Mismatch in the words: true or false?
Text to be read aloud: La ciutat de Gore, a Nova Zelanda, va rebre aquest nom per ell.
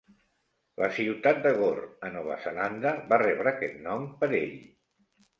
false